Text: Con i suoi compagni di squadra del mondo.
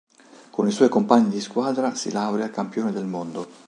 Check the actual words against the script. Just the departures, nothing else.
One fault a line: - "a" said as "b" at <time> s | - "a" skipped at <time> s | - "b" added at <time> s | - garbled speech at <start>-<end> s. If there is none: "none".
- "si laurea campione" added at 1.9 s